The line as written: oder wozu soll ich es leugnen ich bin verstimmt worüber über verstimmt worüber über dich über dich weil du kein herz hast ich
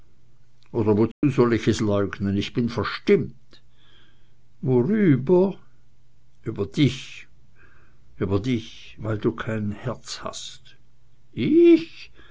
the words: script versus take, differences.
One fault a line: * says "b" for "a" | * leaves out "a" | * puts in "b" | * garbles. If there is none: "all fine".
* leaves out "verstimmt worüber über"